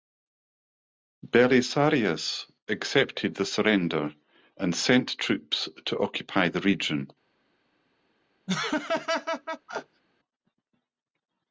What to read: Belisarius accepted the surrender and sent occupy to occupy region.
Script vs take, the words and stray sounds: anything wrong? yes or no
yes